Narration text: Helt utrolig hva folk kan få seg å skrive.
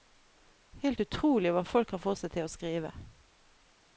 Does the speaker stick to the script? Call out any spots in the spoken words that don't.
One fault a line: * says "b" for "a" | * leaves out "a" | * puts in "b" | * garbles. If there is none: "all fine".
* puts in "til"